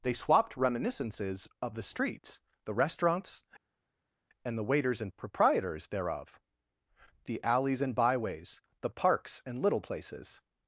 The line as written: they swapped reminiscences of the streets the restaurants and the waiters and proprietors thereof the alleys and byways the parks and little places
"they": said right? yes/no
yes